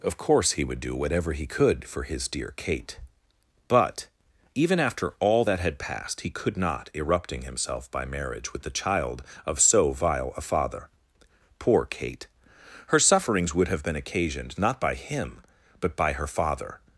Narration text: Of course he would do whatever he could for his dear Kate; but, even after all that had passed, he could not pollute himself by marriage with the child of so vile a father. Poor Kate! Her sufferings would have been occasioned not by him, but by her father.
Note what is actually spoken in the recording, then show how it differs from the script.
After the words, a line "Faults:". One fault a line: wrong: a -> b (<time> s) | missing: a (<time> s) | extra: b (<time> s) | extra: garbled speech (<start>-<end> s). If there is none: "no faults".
Of course he would do whatever he could for his dear Kate; but, even after all that had passed, he could not erupting himself by marriage with the child of so vile a father. Poor Kate! Her sufferings would have been occasioned not by him, but by her father.
Faults:
wrong: pollute -> erupting (6.9 s)